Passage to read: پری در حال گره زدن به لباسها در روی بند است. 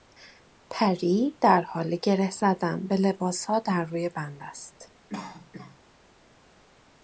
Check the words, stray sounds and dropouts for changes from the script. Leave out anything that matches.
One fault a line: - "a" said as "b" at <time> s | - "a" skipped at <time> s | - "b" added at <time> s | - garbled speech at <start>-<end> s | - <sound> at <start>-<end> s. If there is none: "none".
- cough at 5.1-5.8 s